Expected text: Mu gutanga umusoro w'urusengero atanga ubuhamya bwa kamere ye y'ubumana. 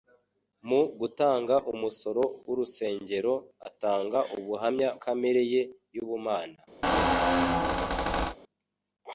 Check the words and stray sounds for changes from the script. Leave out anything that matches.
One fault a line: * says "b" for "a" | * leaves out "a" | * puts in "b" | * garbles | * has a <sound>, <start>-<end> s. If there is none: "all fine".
* leaves out "bwa"
* has a squeak, 6.8-8.4 s